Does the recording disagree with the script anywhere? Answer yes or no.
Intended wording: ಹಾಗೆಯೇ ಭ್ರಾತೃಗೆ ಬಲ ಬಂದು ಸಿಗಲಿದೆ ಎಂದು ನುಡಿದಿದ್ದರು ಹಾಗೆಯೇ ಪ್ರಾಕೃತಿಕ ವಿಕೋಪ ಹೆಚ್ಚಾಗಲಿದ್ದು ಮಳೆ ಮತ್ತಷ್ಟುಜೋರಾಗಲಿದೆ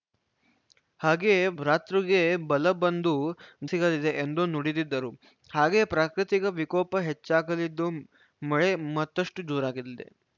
no